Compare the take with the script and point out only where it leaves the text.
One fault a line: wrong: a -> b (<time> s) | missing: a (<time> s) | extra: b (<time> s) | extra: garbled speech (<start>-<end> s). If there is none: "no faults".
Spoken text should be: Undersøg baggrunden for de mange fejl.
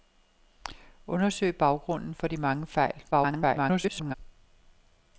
extra: garbled speech (3.1-4.1 s)